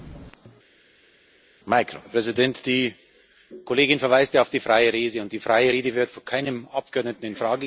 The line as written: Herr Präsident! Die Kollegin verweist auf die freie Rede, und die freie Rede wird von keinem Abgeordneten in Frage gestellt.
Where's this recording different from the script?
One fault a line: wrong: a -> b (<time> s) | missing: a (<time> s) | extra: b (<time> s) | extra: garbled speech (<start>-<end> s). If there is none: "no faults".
no faults